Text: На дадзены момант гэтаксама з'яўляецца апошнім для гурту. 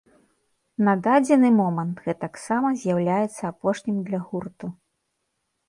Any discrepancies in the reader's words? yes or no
no